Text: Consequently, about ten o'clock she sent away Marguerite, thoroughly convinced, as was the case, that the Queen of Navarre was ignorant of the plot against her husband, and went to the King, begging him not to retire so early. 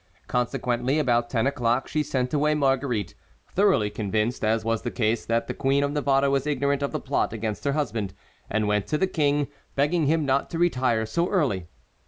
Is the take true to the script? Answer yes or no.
yes